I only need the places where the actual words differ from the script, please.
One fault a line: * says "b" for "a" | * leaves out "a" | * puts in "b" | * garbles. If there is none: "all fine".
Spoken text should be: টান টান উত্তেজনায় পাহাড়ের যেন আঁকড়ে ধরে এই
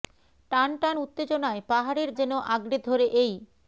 all fine